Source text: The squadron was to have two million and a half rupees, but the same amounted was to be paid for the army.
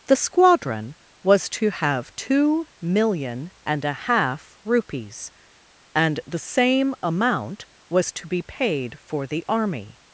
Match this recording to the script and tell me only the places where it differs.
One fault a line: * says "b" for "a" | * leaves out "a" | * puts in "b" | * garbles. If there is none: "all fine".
* says "and" for "but"
* says "amount" for "amounted"